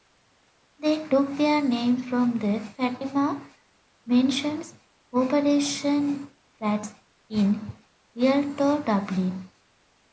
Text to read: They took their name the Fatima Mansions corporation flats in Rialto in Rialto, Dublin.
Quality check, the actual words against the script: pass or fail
fail